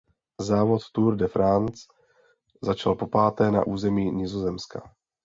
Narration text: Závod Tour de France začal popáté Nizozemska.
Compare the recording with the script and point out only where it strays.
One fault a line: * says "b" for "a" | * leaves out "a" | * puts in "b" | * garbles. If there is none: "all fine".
* puts in "na území"